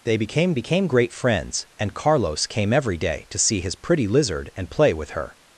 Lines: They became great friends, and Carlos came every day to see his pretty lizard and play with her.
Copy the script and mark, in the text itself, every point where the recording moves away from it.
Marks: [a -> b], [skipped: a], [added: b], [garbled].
They became [added: became] great friends, and Carlos came every day to see his pretty lizard and play with her.